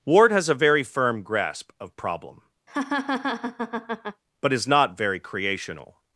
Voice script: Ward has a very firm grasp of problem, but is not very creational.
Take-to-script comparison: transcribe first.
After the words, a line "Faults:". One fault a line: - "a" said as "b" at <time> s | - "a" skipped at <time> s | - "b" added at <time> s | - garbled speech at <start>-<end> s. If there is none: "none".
Ward has a very firm grasp of problem, but is not very creational.
Faults:
none